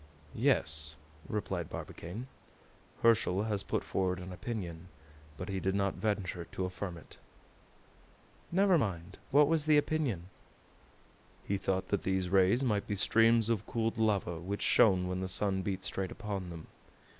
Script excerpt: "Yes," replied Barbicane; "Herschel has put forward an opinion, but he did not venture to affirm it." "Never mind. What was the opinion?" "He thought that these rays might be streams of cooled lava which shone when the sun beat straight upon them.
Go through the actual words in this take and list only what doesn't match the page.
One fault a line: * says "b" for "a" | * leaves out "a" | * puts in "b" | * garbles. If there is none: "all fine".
all fine